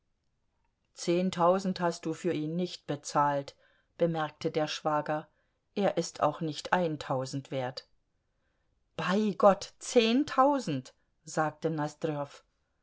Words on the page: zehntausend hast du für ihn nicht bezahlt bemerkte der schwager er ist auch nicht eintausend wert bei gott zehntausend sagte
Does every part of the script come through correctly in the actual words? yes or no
yes